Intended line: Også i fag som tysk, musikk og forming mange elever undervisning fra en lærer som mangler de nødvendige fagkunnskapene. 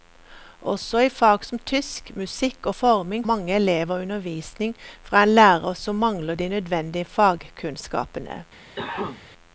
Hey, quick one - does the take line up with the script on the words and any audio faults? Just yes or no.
no